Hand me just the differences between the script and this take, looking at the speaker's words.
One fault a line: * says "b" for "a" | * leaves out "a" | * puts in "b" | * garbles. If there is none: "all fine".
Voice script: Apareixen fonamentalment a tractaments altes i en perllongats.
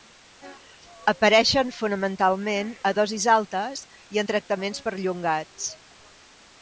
* says "dosis" for "tractaments"
* puts in "tractaments"